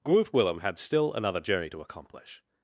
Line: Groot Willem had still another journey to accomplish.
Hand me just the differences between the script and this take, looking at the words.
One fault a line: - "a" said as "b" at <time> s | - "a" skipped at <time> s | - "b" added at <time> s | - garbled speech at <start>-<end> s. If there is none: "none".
none